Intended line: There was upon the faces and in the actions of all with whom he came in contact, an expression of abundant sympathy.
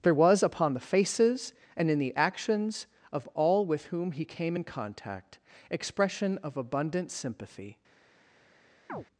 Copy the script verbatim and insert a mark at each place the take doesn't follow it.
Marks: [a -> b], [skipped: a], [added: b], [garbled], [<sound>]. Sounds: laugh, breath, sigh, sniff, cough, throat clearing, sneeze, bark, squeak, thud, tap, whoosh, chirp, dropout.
There was upon the faces and in the actions of all with whom he came in contact, [skipped: an] expression of abundant sympathy. [chirp]